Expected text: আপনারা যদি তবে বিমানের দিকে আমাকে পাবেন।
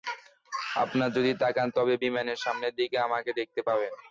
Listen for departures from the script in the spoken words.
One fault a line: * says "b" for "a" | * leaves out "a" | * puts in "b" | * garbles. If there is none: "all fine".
* puts in "তাকান"
* puts in "সামনের"
* puts in "দেখতে"